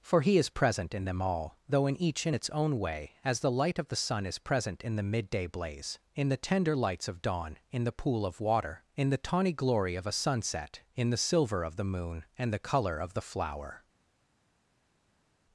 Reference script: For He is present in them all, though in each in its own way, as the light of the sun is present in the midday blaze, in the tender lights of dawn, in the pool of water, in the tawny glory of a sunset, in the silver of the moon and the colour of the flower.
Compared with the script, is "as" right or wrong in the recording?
right